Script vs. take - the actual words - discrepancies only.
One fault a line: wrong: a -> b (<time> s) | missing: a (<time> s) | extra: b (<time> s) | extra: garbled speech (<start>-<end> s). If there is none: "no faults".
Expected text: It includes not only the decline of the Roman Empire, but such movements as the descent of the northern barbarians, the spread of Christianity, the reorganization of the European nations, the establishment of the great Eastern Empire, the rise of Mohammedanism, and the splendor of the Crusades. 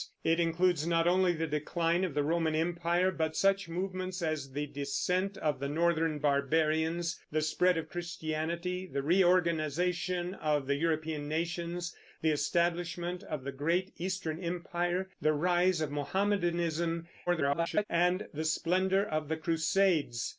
extra: garbled speech (17.3-17.9 s)